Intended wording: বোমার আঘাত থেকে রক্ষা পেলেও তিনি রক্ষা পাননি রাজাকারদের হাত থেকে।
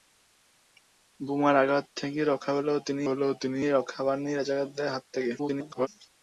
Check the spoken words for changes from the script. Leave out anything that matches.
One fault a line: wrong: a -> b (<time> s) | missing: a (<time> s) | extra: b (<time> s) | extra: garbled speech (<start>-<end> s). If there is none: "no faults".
extra: পেলেও তিনি (3.1 s)
extra: garbled speech (5.4-5.9 s)